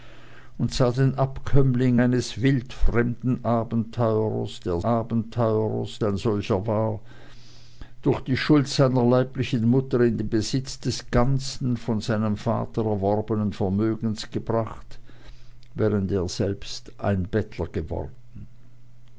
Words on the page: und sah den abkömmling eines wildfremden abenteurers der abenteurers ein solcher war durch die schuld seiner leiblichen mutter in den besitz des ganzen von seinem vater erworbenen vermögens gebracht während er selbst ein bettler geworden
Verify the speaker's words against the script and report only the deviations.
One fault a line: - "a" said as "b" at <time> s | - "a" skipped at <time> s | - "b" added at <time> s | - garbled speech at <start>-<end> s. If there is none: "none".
none